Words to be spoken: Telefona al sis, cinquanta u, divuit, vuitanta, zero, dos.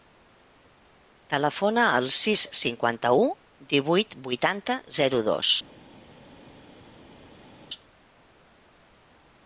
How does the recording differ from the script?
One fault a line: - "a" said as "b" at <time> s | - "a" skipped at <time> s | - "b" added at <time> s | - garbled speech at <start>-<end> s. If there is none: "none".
none